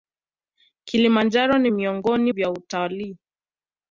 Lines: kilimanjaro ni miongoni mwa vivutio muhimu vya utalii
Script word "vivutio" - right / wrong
wrong